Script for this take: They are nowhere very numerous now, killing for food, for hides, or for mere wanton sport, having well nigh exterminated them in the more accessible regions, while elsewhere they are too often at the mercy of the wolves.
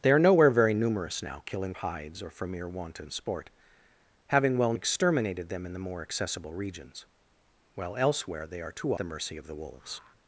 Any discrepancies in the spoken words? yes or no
yes